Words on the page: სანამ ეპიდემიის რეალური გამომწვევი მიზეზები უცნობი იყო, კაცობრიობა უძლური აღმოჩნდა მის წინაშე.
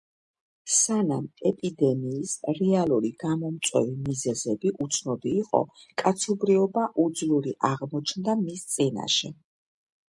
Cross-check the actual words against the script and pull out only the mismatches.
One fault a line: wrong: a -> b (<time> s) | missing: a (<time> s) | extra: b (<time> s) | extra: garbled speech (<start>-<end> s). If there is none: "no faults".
no faults